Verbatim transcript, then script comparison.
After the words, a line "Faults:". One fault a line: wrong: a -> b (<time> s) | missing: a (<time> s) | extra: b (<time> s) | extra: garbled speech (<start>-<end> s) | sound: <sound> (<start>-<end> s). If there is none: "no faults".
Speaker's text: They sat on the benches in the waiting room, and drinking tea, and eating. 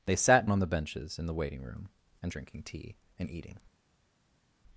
They sat on the benches in the waiting room, and drinking tea, and eating.
Faults:
no faults